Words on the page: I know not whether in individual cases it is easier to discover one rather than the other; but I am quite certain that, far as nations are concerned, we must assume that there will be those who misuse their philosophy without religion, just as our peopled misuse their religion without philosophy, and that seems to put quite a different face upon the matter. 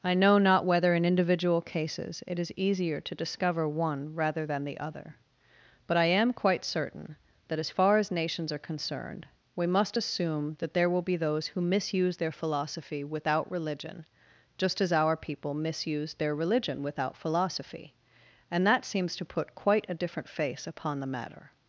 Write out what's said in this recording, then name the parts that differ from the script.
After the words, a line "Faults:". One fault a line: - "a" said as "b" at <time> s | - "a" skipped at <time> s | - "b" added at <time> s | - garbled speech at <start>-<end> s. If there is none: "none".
I know not whether in individual cases it is easier to discover one rather than the other; but I am quite certain that, as far as nations are concerned, we must assume that there will be those who misuse their philosophy without religion, just as our people misuse their religion without philosophy, and that seems to put quite a different face upon the matter.
Faults:
- "as" added at 7.6 s
- "peopled" said as "people" at 15.2 s